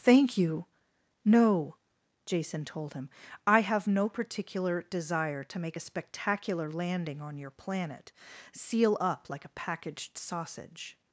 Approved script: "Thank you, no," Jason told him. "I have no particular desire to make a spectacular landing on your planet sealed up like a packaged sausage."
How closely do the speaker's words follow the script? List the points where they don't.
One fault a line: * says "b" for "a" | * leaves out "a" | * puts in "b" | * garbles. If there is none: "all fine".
* says "seal" for "sealed"